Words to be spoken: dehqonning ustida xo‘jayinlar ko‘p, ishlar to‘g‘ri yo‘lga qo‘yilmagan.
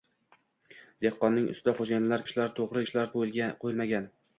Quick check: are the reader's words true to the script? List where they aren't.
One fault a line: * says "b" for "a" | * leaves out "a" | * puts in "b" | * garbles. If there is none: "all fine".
* leaves out "ko‘p"
* says "ishlar" for "yo‘lga"